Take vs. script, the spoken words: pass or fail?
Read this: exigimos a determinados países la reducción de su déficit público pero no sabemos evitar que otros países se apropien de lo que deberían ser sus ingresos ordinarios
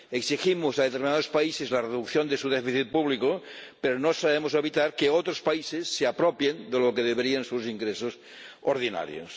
fail